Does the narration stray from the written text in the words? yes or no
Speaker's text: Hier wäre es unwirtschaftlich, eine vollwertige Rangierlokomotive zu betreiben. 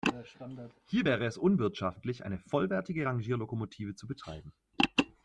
no